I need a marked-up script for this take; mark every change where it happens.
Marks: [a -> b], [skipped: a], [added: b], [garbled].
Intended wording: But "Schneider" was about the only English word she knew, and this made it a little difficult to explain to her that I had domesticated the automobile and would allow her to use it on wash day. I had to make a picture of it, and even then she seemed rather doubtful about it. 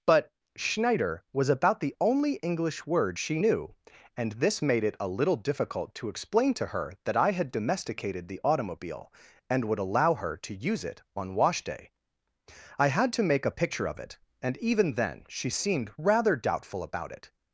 But "Schneider" was about the only English word she knew, and this made it a little difficult to explain to her that I had domesticated the automobile and would allow her to use it on wash day. I had to make a picture of it, and even then she seemed rather doubtful about it.